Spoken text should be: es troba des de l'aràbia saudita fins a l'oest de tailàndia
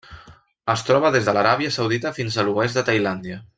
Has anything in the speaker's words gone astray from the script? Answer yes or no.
no